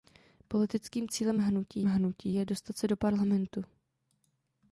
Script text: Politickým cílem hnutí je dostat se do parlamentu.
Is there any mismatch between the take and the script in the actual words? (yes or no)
yes